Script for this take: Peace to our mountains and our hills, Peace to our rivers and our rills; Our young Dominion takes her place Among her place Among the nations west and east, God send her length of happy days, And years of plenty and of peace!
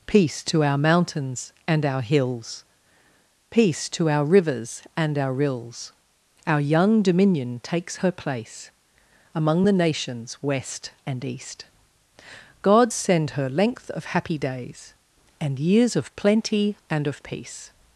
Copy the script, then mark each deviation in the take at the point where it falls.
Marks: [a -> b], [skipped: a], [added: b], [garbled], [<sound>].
Peace to our mountains and our hills, Peace to our rivers and our rills; Our young Dominion takes her place Among [skipped: her place Among] the nations west and east, God send her length of happy days, And years of plenty and of peace!